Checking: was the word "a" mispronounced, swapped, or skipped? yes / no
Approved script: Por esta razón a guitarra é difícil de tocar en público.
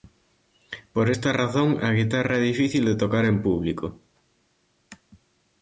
no